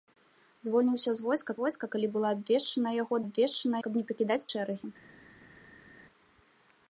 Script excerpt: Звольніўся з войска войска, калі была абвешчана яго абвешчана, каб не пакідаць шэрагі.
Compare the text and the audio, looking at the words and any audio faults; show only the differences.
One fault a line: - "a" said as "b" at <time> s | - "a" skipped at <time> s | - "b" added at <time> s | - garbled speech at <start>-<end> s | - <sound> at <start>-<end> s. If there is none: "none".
none